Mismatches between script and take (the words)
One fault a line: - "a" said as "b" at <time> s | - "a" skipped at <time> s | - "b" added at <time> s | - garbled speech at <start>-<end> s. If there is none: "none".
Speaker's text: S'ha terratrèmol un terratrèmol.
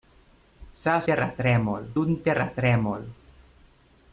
none